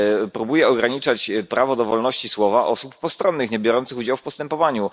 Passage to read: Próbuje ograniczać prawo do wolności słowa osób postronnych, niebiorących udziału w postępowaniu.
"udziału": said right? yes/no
yes